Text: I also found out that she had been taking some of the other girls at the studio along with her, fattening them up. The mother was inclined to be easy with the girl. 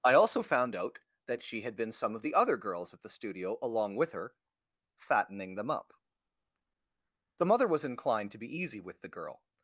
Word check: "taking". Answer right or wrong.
wrong